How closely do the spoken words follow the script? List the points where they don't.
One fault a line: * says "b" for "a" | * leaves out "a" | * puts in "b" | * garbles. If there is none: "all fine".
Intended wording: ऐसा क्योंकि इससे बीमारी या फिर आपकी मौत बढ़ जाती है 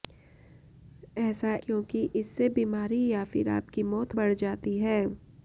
all fine